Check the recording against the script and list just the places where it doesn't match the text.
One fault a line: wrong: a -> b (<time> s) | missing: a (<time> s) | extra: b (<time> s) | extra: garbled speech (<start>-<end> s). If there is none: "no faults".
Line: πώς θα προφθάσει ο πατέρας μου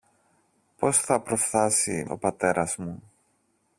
no faults